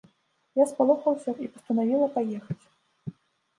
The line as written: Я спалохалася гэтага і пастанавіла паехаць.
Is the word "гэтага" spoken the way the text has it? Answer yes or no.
no